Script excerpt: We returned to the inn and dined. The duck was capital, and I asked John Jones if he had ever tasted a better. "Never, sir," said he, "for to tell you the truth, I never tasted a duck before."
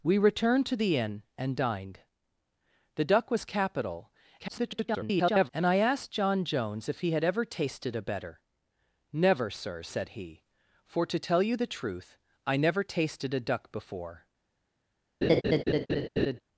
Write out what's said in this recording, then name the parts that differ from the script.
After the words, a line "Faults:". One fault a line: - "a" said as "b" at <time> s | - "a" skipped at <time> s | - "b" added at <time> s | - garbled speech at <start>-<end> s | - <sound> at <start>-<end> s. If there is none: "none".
We returned to the inn and dined. The duck was capital, [garbled] and I asked John Jones if he had ever tasted a better. "Never, sir," said he, "for to tell you the truth, I never tasted a duck before."
Faults:
- garbled speech at 4.4-5.5 s
- laugh at 15.2-16.4 s